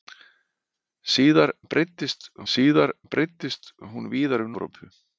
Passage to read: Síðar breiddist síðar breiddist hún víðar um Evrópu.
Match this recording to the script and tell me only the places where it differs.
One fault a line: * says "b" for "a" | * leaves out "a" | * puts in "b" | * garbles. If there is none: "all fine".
all fine